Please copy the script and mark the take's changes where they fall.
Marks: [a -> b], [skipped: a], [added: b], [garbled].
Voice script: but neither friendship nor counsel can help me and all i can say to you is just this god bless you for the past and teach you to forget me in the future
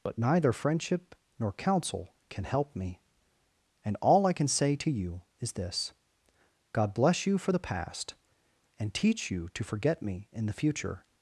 but neither friendship nor counsel can help me and all i can say to you is [skipped: just] this god bless you for the past and teach you to forget me in the future